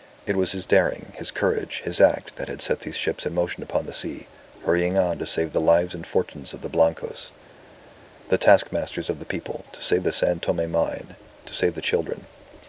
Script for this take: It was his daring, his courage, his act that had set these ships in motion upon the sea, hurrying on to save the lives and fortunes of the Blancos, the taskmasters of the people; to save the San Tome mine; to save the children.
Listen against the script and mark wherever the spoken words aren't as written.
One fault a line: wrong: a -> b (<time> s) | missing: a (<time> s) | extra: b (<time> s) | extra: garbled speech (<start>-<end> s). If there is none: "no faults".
no faults